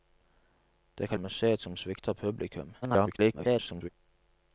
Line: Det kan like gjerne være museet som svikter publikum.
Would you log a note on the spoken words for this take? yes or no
yes